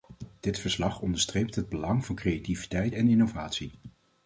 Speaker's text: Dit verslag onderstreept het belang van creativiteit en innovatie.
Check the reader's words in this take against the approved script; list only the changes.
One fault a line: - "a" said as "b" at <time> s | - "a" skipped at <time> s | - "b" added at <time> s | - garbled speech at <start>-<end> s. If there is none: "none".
none